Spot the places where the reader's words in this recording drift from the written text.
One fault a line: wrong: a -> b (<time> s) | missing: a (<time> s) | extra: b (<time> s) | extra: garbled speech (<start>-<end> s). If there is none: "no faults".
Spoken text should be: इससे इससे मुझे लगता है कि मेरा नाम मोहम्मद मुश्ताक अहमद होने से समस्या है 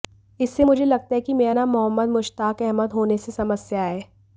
missing: इससे (0.6 s)